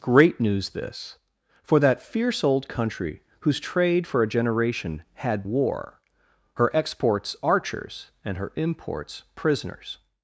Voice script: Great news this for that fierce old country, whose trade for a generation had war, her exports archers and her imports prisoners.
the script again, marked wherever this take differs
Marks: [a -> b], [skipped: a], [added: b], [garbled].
Great news this for that fierce old country, whose trade for a generation had war, her exports archers and her imports prisoners.